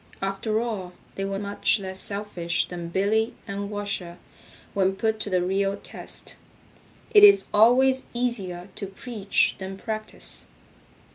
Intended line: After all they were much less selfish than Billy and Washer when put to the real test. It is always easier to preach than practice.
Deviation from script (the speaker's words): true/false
false